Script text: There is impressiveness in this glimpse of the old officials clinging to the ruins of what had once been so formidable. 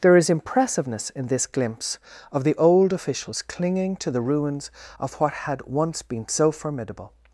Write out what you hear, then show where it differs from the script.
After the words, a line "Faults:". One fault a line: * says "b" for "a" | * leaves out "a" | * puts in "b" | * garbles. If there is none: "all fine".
There is impressiveness in this glimpse of the old officials clinging to the ruins of what had once been so formidable.
Faults:
all fine